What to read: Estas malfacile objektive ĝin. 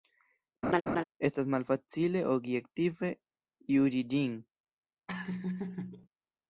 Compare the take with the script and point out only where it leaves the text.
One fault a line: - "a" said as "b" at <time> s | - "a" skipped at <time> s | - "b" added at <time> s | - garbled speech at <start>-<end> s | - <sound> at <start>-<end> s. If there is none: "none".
- laugh at 0.6-1.0 s
- "juĝi" added at 3.8 s
- laugh at 5.1-6.1 s